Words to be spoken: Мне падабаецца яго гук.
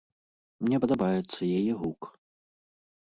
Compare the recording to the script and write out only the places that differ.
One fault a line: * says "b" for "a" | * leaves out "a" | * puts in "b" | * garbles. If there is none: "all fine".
* says "яе" for "яго"